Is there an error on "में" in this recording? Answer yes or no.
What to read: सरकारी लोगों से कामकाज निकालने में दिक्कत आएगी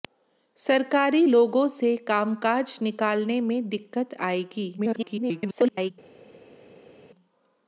no